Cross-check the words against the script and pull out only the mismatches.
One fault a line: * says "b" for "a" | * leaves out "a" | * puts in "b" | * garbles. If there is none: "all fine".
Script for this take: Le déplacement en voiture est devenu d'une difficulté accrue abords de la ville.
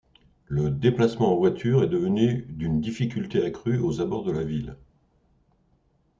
* puts in "aux"